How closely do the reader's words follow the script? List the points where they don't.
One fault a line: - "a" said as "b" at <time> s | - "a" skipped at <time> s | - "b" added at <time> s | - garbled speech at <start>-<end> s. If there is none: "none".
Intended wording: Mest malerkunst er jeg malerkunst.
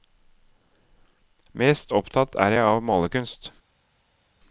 - "malerkunst" said as "opptatt" at 1.9 s
- "av" added at 2.7 s